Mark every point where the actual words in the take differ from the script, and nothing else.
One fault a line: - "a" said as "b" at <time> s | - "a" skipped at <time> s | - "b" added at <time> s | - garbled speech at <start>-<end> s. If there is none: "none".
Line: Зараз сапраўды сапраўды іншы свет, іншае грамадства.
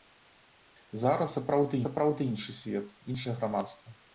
none